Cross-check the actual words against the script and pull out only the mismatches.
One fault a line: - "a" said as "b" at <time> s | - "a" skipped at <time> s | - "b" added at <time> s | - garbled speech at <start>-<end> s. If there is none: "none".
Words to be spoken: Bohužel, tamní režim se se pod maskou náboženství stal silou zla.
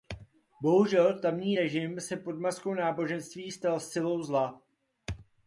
- "se" skipped at 2.2 s